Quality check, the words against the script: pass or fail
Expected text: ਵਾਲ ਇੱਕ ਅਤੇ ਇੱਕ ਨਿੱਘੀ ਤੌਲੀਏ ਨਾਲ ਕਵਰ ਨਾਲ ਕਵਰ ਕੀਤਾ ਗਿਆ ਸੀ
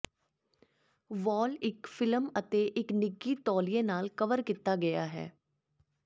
fail